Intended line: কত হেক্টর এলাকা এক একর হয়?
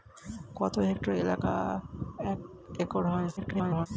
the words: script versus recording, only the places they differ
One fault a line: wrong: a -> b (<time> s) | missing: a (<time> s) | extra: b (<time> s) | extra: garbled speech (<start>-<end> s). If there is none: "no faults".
extra: garbled speech (3.4-3.9 s)